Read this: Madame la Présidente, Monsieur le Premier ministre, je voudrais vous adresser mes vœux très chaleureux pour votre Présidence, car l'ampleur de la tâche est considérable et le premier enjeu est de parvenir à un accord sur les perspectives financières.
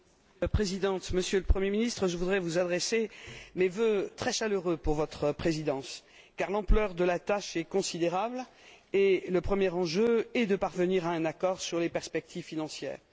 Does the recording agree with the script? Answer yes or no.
yes